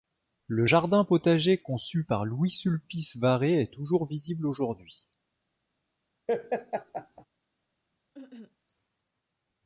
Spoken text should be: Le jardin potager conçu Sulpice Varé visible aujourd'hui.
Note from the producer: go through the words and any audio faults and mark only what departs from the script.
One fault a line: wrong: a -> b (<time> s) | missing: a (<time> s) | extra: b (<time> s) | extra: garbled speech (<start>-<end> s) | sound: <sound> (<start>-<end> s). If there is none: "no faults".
extra: par Louis (2.0 s)
extra: est toujours (3.6 s)
sound: laugh (6.3-7.3 s)
sound: cough (8.1-8.6 s)